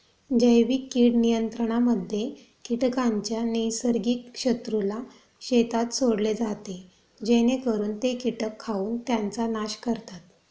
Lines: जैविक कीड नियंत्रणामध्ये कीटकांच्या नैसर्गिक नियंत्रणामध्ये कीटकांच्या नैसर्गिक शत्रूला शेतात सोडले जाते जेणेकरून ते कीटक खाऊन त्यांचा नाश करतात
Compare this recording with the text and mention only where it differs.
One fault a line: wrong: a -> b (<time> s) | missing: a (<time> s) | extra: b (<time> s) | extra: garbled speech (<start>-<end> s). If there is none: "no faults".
missing: नियंत्रणामध्ये कीटकांच्या नैसर्गिक (4.4 s)